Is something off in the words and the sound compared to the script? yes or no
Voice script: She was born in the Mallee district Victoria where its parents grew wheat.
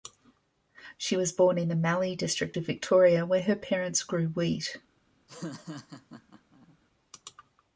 yes